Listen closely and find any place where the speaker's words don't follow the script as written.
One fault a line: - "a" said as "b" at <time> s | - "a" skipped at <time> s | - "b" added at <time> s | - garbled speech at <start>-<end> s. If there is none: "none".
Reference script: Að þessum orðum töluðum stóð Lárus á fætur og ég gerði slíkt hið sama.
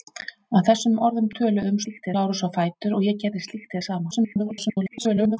- "stóð" said as "slíkt" at 1.8 s
- garbled speech at 4.1-5.4 s